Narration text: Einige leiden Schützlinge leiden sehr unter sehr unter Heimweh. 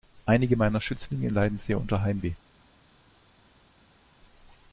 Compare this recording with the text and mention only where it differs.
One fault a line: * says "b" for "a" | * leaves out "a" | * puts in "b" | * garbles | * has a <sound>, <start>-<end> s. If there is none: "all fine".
* says "meiner" for "leiden"
* leaves out "sehr unter"